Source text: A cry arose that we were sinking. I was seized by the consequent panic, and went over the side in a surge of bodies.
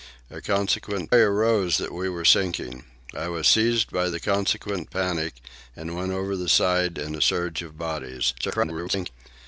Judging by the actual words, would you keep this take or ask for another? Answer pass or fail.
fail